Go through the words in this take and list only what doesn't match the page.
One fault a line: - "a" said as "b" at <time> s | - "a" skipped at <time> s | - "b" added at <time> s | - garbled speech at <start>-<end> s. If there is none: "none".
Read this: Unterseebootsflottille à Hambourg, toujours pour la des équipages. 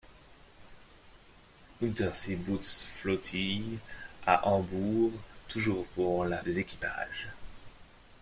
none